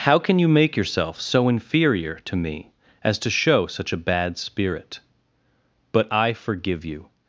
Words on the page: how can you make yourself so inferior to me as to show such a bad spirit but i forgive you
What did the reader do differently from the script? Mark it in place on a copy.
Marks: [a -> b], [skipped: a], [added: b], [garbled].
how can you make yourself so inferior to me as to show such a bad spirit but i forgive you